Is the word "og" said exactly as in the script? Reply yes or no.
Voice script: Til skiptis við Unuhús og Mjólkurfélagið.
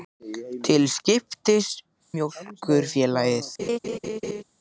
no